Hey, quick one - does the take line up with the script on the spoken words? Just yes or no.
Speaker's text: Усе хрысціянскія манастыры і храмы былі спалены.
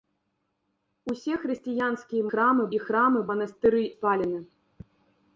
no